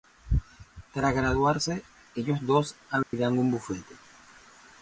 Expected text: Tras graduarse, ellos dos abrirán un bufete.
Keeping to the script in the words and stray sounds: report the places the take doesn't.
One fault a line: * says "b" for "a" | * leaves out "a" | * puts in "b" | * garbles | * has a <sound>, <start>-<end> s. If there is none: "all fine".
* has a dropout, 3.0-3.1 s